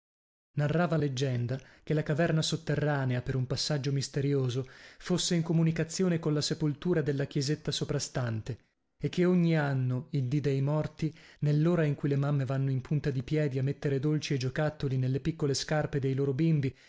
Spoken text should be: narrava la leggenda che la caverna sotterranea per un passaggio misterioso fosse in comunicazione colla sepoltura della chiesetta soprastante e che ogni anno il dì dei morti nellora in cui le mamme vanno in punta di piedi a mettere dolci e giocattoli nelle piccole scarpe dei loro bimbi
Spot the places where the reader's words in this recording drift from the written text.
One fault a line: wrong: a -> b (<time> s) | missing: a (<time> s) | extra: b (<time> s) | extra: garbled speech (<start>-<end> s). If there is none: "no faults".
missing: la (1.0 s)